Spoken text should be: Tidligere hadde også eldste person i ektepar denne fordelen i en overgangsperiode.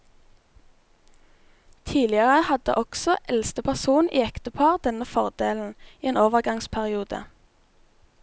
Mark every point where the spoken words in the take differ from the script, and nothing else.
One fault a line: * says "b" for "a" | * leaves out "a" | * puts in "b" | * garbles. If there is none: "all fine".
all fine